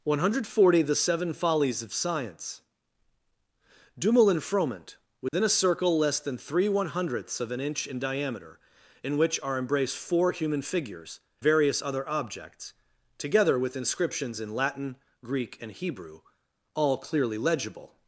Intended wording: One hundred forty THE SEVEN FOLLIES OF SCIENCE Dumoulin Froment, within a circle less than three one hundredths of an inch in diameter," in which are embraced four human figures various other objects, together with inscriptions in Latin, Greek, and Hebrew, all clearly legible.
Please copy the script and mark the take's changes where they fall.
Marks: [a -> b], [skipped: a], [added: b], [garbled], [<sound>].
One hundred forty THE SEVEN FOLLIES OF SCIENCE Dumoulin Froment, within [dropout] a circle less than three one hundredths of an inch in diameter," in which are embraced four human figures various other objects, together with inscriptions in Latin, Greek, and Hebrew, all clearly legible.